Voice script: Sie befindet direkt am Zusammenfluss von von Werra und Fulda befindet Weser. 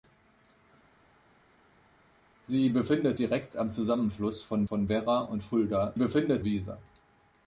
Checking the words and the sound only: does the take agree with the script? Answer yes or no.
yes